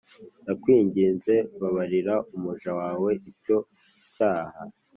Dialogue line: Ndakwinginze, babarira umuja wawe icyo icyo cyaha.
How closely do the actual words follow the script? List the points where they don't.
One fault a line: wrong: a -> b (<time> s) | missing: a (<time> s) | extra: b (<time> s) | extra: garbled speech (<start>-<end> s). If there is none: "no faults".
missing: icyo (3.6 s)